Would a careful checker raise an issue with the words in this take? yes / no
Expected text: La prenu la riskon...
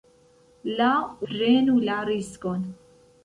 no